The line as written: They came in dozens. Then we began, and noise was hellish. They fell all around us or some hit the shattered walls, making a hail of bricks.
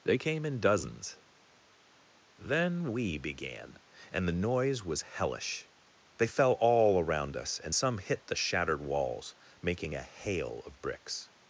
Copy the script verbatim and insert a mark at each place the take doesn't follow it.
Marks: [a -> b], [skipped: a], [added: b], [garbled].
They came in dozens. Then we began, and [added: the] noise was hellish. They fell all around us [or -> and] some hit the shattered walls, making a hail of bricks.